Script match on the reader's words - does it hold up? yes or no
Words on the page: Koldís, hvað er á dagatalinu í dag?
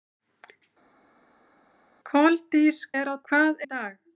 no